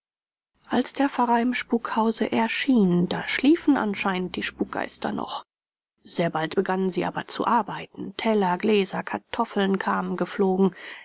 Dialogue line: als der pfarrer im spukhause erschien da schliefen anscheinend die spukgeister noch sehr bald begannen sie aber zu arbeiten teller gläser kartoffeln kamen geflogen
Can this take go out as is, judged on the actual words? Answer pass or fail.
pass